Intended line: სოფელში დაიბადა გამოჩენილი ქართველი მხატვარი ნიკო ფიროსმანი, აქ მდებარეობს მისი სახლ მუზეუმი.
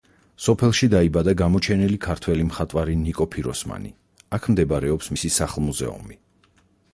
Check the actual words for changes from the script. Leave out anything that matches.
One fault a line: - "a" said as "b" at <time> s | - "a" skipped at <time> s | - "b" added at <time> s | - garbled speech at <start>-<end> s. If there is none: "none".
none